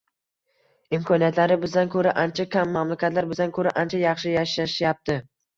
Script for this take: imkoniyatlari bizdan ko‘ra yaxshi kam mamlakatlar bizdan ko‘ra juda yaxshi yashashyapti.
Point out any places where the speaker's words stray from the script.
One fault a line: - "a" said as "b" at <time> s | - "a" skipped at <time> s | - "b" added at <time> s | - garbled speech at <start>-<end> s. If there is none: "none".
- "yaxshi" said as "ancha" at 2.2 s
- "juda" said as "ancha" at 3.9 s